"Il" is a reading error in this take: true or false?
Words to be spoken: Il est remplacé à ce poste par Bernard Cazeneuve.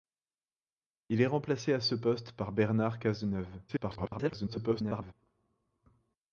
false